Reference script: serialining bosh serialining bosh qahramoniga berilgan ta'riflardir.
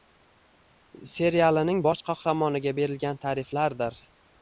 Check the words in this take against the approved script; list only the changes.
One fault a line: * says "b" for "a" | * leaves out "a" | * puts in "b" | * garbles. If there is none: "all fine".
* leaves out "serialining bosh"